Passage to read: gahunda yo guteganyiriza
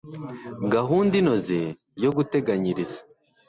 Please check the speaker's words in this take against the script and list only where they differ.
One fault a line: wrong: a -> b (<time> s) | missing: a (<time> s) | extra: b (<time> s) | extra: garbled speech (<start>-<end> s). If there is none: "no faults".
extra: inoze (1.2 s)